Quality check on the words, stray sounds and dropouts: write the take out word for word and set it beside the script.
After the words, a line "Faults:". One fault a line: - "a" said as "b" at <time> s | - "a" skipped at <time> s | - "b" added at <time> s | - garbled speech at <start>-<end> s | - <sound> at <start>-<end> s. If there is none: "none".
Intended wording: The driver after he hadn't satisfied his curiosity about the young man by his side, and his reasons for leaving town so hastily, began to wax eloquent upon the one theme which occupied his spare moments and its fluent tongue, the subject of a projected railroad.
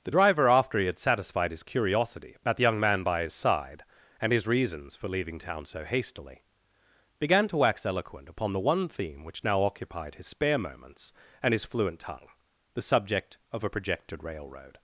The driver after he had satisfied his curiosity about the young man by his side, and his reasons for leaving town so hastily, began to wax eloquent upon the one theme which now occupied his spare moments and his fluent tongue, the subject of a projected railroad.
Faults:
- "hadn't" said as "had" at 0.8 s
- "now" added at 9.4 s
- "its" said as "his" at 11.5 s